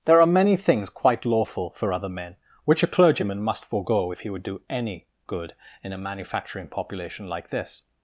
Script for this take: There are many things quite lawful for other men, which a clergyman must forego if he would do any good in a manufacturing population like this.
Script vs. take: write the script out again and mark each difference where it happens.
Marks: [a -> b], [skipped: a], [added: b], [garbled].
There are many things quite lawful for other men, which a clergyman must forego if he would do any good in a manufacturing population like this.